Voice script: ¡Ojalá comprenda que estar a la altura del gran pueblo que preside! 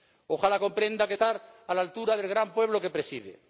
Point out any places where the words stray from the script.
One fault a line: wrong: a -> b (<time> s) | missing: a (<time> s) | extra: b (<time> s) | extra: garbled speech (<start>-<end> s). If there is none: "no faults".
no faults